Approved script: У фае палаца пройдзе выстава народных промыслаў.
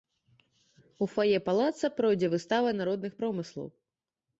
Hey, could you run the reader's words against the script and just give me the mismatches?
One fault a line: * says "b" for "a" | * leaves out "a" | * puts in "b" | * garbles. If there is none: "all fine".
all fine